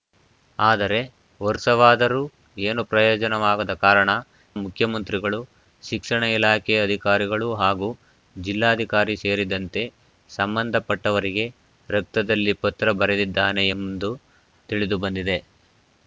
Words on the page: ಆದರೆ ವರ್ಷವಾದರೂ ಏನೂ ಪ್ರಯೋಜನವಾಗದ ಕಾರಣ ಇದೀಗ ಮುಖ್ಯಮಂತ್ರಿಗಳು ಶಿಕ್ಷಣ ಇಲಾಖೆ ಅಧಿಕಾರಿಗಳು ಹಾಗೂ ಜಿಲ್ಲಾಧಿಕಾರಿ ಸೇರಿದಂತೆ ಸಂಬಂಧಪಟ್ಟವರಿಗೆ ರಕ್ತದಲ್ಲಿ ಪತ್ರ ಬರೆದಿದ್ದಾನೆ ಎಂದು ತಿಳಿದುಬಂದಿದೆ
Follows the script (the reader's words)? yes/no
no